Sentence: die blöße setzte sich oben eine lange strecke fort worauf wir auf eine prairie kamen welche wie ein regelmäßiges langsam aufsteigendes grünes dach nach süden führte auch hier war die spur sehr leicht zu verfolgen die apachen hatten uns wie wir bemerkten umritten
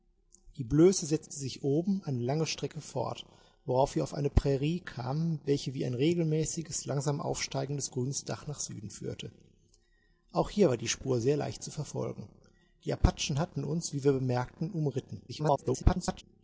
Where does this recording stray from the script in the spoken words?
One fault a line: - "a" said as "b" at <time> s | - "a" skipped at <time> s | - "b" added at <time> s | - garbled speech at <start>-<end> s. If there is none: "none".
- garbled speech at 15.3-16.2 s